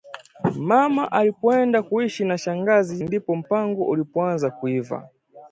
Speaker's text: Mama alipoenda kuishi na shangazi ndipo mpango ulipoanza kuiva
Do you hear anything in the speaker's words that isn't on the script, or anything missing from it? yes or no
no